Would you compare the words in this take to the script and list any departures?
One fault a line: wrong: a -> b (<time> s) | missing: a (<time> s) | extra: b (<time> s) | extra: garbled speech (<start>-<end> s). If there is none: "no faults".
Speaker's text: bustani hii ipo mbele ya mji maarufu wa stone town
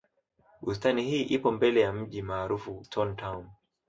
missing: wa (2.9 s)